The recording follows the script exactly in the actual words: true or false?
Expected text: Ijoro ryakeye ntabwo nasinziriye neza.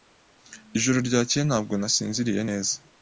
true